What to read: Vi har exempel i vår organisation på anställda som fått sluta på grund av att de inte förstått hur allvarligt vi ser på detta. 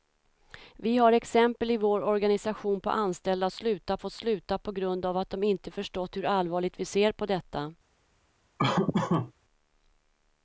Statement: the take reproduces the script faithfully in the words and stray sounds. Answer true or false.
false